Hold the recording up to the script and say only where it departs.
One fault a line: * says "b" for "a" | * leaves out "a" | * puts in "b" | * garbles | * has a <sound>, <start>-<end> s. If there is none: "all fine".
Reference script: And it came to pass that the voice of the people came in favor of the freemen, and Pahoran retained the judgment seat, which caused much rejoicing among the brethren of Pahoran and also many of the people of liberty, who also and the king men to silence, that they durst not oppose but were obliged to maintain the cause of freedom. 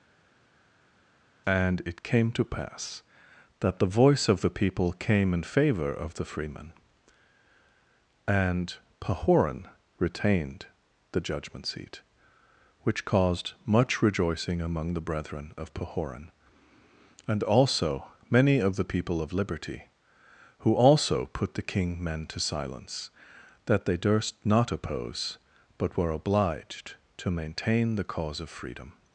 * says "put" for "and"